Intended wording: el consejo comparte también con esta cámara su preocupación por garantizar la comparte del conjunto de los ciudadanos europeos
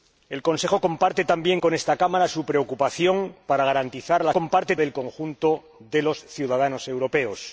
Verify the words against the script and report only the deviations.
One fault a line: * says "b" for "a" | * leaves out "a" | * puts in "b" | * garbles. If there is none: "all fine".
all fine